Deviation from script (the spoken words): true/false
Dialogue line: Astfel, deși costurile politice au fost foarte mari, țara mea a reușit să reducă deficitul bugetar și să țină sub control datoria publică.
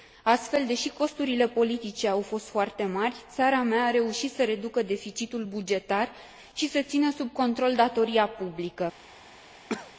false